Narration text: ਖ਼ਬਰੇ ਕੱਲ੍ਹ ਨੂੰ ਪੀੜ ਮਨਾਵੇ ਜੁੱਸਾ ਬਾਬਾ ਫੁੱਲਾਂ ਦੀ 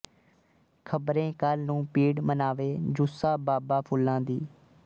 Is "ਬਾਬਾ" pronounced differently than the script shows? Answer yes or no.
no